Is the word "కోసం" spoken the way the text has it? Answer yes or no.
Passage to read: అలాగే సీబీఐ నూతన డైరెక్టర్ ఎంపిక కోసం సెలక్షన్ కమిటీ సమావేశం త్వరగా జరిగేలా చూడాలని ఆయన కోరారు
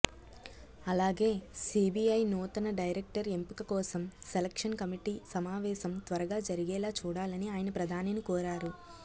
yes